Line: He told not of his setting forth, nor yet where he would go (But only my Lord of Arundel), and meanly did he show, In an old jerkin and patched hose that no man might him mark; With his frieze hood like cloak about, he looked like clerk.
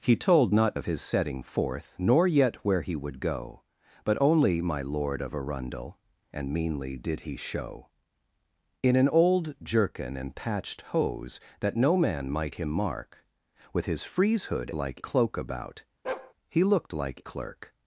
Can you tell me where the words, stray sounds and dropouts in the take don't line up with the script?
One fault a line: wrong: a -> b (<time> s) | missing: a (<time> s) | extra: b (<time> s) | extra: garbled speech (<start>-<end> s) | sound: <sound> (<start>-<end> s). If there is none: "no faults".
sound: bark (16.0-16.3 s)